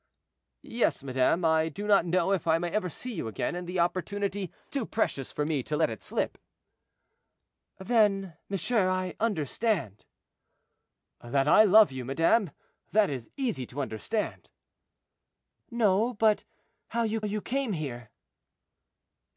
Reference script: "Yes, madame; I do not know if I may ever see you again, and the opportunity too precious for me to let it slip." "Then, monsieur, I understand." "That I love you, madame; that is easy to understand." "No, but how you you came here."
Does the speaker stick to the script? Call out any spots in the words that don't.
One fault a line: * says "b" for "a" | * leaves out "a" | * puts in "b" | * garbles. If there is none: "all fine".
all fine